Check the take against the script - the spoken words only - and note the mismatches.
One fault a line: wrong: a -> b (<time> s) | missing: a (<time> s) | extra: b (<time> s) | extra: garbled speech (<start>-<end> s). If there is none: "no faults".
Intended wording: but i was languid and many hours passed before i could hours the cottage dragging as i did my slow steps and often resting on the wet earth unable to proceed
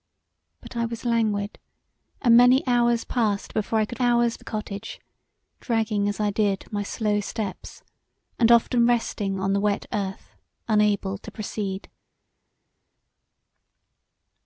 no faults